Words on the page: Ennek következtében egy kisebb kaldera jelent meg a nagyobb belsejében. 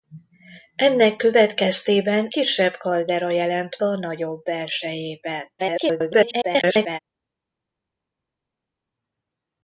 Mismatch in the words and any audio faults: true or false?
true